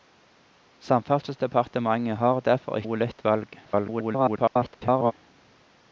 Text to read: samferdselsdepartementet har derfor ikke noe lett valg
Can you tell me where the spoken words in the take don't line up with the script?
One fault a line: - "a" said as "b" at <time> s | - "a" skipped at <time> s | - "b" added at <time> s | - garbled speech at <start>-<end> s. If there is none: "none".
- "ikke" skipped at 2.8 s
- garbled speech at 3.6-5.1 s